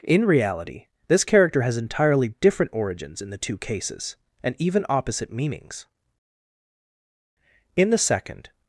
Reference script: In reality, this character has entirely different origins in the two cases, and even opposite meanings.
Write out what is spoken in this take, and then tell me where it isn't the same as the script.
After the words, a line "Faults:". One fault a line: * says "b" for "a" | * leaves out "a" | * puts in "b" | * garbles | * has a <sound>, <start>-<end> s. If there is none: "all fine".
In reality, this character has entirely different origins in the two cases, and even opposite meanings. In the second
Faults:
* puts in "In the second"